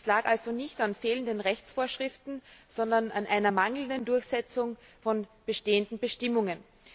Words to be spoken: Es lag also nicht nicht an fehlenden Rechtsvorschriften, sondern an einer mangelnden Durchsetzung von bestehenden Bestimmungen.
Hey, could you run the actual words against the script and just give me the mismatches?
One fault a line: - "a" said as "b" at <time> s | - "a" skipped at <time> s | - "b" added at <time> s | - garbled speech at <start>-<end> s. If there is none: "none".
- "nicht" skipped at 0.8 s